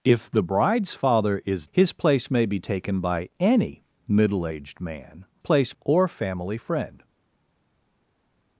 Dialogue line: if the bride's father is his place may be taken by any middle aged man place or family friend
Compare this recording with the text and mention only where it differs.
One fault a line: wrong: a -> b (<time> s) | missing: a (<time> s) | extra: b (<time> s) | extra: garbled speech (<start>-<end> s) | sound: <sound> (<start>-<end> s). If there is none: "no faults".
no faults